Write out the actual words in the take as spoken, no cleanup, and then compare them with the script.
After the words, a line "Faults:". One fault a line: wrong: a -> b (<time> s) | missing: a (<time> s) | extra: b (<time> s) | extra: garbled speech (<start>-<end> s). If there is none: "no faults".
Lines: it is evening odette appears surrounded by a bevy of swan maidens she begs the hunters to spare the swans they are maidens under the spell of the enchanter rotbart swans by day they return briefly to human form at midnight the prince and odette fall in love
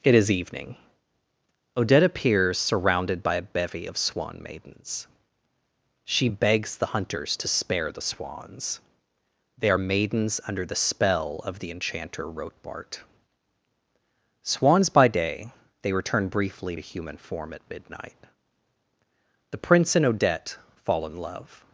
it is evening odette appears surrounded by a bevy of swan maidens she begs the hunters to spare the swans they are maidens under the spell of the enchanter rotbart swans by day they return briefly to human form at midnight the prince and odette fall in love
Faults:
no faults